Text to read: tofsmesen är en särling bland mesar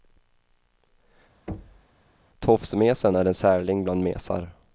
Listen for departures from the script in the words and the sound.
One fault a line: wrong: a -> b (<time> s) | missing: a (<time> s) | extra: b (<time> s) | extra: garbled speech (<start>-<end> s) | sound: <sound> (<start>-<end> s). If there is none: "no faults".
sound: thud (1.5-1.9 s)